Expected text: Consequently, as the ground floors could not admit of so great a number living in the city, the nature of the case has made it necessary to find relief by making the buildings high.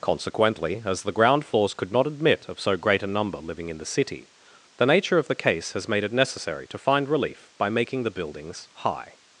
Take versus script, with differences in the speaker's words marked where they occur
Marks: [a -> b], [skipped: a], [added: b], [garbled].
Consequently, as the ground floors could not admit of so great a number living in the city, the nature of the case has made it necessary to find relief by making the buildings high.